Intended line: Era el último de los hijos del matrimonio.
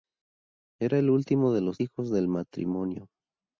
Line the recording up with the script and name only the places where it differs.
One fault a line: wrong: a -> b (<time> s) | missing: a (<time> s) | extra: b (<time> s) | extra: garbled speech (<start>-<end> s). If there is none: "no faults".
no faults